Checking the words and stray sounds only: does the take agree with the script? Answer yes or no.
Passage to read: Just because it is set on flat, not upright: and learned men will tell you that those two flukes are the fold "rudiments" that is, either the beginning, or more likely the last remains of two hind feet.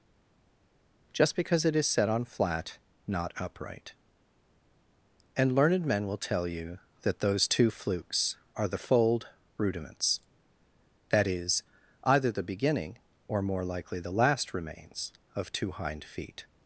yes